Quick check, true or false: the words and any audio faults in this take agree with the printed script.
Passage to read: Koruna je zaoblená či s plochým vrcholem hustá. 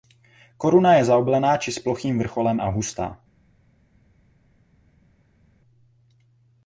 false